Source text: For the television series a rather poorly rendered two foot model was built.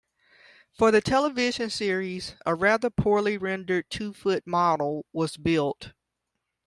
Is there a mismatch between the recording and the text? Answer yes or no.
no